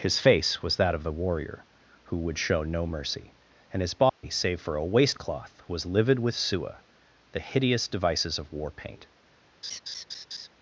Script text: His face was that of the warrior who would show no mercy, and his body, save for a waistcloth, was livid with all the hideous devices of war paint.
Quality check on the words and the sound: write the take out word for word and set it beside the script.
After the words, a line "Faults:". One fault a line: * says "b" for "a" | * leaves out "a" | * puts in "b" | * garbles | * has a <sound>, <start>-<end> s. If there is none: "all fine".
His face was that of the warrior who would show no mercy, and his body, save for a waistcloth, was livid with sua the hideous devices of war paint.
Faults:
* has a dropout, 4.1-4.2 s
* says "sua" for "all"
* has a laugh, 9.6-10.5 s